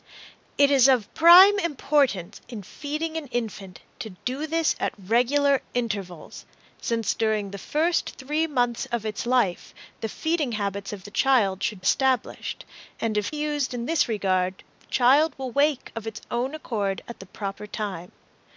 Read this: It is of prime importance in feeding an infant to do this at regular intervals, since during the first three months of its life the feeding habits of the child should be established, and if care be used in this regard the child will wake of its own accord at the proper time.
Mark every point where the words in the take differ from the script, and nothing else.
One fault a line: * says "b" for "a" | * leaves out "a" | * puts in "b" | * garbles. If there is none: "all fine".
* leaves out "be"
* leaves out "care be"